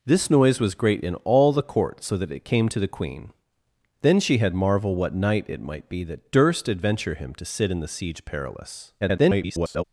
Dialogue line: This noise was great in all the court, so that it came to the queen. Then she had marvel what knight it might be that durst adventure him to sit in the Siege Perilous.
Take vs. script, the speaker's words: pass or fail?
fail